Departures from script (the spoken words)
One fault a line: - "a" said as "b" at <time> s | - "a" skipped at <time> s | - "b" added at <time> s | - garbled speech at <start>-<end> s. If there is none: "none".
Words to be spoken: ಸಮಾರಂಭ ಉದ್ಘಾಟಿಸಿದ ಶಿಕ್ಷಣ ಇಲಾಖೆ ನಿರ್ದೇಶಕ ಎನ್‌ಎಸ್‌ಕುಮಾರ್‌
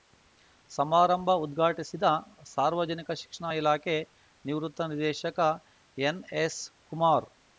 - "ಸಾರ್ವಜನಿಕ" added at 2.5 s
- "ನಿವೃತ್ತ" added at 4.4 s